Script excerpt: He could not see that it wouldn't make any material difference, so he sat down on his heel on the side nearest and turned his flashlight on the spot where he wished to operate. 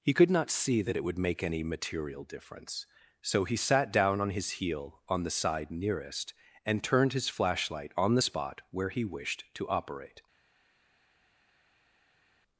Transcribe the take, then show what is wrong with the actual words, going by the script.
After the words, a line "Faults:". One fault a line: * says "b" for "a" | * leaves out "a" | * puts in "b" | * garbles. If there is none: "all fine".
He could not see that it would make any material difference, so he sat down on his heel on the side nearest and turned his flashlight on the spot where he wished to operate.
Faults:
* says "would" for "wouldn't"